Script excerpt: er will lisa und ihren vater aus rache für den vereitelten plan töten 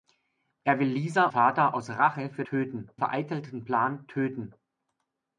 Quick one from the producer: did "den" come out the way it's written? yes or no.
no